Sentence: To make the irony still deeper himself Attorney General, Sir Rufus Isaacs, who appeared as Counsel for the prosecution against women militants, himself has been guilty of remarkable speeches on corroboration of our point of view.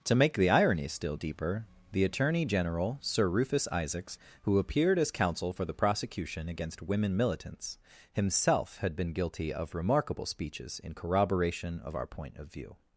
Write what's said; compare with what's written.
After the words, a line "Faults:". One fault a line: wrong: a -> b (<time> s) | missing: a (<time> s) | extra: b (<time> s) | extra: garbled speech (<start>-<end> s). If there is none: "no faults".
To make the irony still deeper the Attorney General, Sir Rufus Isaacs, who appeared as Counsel for the prosecution against women militants, himself had been guilty of remarkable speeches in corroboration of our point of view.
Faults:
wrong: himself -> the (1.9 s)
wrong: has -> had (8.8 s)
wrong: on -> in (10.8 s)